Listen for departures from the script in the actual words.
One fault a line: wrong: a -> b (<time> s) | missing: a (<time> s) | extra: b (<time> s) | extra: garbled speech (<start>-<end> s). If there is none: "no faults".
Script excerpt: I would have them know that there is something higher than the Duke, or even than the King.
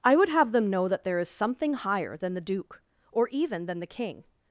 no faults